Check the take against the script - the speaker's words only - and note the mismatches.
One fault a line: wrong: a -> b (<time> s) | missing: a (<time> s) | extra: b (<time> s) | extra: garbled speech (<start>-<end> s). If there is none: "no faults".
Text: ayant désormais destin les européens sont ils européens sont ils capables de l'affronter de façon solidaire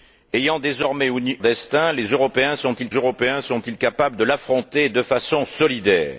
no faults